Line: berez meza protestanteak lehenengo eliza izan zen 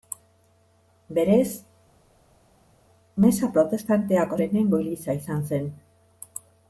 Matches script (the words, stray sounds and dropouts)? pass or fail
pass